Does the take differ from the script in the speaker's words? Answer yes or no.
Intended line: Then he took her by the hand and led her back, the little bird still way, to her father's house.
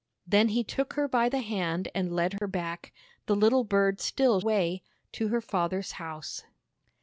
no